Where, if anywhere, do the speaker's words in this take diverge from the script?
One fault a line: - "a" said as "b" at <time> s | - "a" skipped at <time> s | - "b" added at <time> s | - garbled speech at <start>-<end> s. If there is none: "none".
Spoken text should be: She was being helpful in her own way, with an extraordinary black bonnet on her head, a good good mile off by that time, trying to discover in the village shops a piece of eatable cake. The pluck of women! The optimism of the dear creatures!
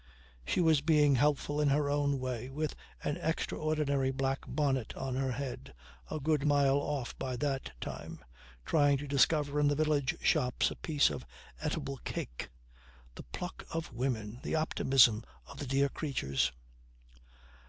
- "good" skipped at 6.5 s